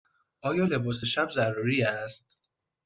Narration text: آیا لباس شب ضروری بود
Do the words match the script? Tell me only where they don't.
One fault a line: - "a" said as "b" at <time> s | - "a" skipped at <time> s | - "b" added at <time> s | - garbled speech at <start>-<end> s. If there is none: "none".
- "بود" said as "است" at 1.8 s